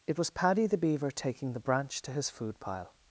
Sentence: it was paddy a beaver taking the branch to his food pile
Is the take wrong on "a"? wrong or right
wrong